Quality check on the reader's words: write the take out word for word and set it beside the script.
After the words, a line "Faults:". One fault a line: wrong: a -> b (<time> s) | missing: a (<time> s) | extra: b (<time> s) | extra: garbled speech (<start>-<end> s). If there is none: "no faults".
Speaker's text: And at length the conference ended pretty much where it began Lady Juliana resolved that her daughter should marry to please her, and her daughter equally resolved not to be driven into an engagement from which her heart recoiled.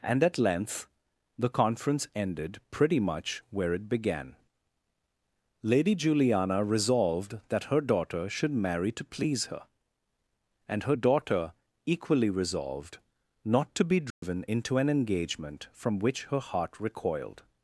And at length the conference ended pretty much where it began Lady Juliana resolved that her daughter should marry to please her, and her daughter equally resolved not to be driven into an engagement from which her heart recoiled.
Faults:
no faults